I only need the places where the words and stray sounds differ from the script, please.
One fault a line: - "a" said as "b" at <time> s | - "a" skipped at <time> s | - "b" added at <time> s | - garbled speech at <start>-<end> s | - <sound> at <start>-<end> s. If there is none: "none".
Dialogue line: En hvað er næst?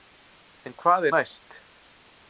none